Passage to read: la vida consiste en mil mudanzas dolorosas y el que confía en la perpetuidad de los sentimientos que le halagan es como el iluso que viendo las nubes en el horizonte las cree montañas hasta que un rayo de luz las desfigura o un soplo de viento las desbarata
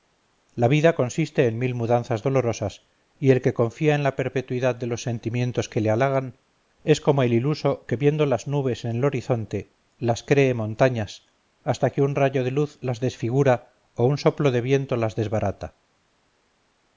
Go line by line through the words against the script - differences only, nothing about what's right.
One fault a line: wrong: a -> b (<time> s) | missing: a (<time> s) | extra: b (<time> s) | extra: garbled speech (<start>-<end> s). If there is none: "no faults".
no faults